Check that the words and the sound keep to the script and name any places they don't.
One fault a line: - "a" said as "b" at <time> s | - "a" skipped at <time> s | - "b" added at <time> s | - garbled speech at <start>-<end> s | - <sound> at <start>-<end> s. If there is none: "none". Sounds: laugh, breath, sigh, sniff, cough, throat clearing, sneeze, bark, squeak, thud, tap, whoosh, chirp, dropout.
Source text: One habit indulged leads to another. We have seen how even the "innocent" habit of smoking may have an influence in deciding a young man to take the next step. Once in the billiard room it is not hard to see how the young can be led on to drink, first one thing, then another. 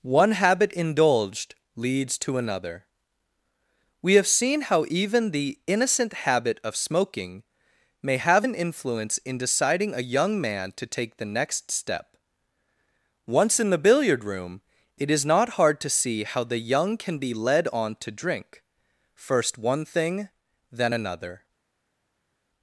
none